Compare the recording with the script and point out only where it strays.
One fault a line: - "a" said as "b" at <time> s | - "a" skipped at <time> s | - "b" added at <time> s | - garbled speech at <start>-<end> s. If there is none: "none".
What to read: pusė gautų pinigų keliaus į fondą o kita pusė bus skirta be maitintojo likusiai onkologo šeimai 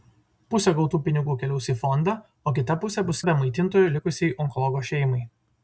- "skirta" skipped at 3.2 s